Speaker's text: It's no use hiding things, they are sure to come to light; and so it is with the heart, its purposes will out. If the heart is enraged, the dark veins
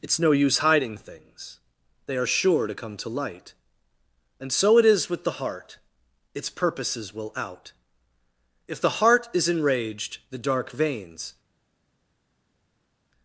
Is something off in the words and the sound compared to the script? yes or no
no